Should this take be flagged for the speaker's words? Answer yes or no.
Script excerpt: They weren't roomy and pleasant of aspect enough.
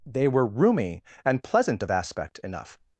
yes